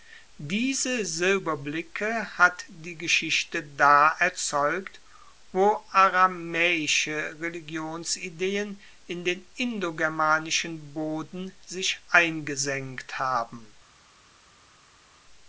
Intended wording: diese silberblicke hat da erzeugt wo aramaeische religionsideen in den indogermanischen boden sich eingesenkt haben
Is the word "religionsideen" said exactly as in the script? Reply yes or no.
yes